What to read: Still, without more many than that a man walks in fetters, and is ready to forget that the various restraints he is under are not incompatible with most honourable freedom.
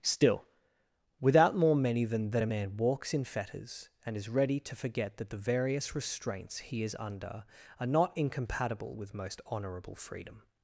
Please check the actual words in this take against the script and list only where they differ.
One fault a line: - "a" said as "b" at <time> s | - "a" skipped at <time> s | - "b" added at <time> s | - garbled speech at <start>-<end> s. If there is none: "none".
none